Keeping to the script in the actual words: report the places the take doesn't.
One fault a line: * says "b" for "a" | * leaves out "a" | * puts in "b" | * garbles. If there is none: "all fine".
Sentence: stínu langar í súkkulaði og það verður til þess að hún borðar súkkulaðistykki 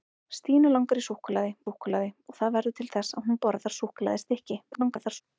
* puts in "súkkulaði"
* garbles